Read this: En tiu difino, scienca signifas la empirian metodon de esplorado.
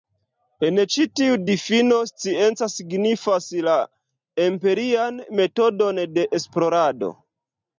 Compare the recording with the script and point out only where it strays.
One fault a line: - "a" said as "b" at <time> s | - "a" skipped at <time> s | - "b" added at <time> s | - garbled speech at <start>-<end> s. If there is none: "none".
- "ĉi" added at 0.9 s